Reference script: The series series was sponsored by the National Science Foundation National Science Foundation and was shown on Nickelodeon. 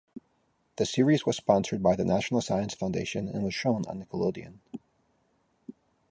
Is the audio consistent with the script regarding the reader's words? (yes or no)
no